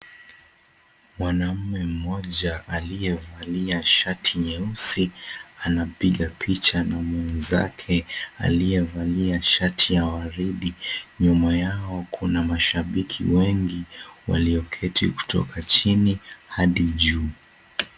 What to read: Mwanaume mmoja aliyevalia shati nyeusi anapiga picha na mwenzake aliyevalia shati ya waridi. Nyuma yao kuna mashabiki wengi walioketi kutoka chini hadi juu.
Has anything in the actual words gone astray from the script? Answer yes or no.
no